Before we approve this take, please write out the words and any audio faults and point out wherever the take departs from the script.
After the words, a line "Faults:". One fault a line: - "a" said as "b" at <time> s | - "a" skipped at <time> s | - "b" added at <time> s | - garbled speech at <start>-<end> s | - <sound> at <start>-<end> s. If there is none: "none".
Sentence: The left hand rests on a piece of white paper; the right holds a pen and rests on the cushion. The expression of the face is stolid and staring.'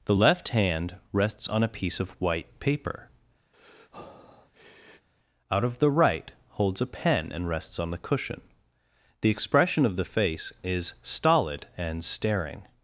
The left hand rests on a piece of white paper; out of the right holds a pen and rests on the cushion. The expression of the face is stolid and staring.'
Faults:
- breath at 3.5-5.1 s
- "out of" added at 5.5 s